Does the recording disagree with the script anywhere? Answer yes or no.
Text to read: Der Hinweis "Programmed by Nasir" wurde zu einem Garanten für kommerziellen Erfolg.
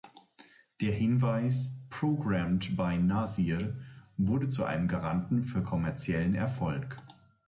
no